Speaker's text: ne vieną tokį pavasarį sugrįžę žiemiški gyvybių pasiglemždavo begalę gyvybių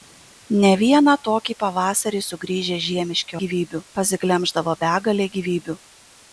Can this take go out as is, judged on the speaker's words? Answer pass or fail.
pass